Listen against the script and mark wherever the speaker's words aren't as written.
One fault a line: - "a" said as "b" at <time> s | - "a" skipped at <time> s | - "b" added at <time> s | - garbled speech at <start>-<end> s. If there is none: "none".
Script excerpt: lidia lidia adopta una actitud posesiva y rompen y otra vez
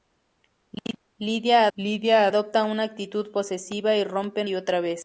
none